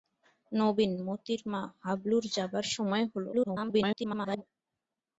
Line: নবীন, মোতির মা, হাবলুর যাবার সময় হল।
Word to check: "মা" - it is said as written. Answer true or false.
true